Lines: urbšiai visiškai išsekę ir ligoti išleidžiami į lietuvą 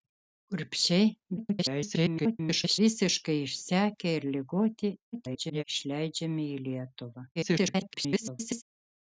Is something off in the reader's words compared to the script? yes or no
yes